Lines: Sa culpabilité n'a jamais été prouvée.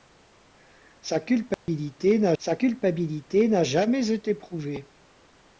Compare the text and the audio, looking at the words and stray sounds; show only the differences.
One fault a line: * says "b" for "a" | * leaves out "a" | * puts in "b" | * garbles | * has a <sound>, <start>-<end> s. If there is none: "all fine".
* has a dropout, 1.5-1.7 s
* puts in "sa culpabilité n'a"